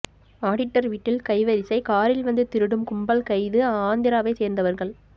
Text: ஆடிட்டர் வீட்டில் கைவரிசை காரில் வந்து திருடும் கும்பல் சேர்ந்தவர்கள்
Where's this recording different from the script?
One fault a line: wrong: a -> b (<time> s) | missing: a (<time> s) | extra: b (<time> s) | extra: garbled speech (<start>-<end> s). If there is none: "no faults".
extra: கைது ஆந்திராவை (3.3 s)